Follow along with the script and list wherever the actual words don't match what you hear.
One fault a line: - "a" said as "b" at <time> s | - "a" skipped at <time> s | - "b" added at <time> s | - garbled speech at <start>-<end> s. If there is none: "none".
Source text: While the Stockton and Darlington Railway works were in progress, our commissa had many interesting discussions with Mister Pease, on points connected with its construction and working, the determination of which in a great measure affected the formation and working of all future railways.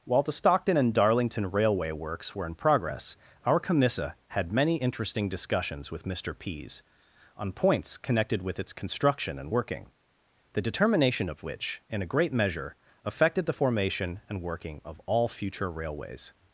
none